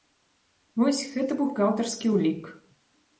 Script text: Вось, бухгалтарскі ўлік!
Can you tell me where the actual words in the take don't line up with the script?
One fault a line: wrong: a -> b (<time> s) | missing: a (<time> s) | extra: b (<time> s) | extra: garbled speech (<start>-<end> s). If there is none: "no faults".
extra: гэта (1.2 s)